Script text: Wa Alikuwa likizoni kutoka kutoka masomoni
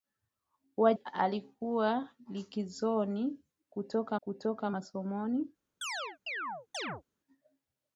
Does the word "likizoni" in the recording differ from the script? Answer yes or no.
no